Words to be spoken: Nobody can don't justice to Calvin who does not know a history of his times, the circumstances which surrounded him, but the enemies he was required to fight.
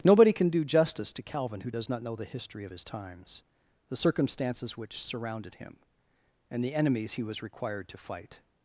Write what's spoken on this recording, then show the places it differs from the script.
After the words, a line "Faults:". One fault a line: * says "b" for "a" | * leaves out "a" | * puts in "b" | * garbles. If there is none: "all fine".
Nobody can do justice to Calvin who does not know the history of his times, the circumstances which surrounded him, and the enemies he was required to fight.
Faults:
* says "do" for "don't"
* says "the" for "a"
* says "and" for "but"